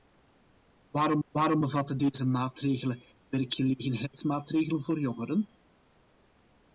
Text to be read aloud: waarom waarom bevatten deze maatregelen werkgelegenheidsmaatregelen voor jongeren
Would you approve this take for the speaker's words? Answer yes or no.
yes